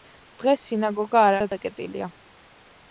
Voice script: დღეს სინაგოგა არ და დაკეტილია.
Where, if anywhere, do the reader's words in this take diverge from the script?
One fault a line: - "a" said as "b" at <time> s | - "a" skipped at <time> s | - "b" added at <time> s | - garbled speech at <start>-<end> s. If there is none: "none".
none